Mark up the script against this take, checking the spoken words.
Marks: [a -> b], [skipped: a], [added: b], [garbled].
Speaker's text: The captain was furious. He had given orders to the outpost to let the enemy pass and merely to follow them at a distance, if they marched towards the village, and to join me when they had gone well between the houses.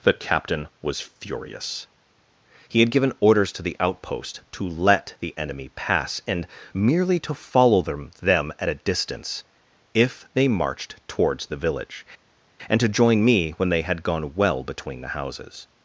The captain was furious. He had given orders to the outpost to let the enemy pass and merely to follow them [added: them] at a distance, if they marched towards the village, and to join me when they had gone well between the houses.